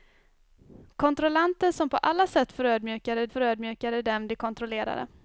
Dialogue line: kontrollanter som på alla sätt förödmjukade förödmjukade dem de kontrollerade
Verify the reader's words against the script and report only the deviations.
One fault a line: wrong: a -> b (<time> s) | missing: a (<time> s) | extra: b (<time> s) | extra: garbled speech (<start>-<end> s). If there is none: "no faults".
no faults